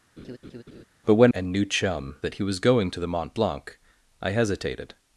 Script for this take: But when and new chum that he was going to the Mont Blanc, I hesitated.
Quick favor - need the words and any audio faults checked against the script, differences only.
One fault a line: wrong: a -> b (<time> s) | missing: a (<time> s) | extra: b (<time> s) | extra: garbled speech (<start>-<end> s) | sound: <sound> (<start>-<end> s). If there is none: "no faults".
sound: laugh (0.2-0.8 s)